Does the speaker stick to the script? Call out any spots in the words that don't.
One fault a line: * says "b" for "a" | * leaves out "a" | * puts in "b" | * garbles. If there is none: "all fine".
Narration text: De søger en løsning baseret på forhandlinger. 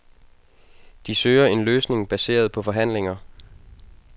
all fine